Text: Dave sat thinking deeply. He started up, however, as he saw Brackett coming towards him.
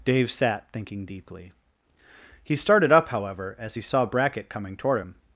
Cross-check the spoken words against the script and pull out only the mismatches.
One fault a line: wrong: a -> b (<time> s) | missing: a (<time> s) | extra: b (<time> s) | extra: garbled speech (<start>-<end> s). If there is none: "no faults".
wrong: towards -> toward (4.8 s)